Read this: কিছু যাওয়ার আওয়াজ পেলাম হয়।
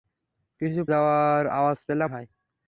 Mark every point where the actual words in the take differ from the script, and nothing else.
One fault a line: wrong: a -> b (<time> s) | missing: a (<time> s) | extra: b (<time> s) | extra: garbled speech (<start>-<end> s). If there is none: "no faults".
no faults